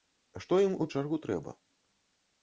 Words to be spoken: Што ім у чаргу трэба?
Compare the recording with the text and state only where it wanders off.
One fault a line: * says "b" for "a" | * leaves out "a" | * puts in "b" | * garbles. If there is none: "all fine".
all fine